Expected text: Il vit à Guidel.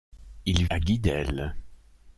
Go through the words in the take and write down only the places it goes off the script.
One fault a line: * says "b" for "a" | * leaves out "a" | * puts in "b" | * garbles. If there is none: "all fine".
* leaves out "vit"